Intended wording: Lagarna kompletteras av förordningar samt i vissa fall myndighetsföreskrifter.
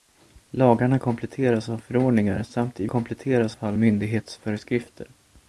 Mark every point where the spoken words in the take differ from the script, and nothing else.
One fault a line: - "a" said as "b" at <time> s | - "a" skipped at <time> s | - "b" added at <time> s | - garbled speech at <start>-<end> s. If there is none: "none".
- "vissa" said as "kompletteras" at 2.9 s